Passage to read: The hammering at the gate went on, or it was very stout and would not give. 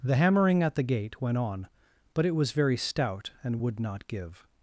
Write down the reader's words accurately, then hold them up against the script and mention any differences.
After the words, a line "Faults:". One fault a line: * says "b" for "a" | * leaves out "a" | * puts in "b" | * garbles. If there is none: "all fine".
The hammering at the gate went on, but it was very stout and would not give.
Faults:
* says "but" for "or"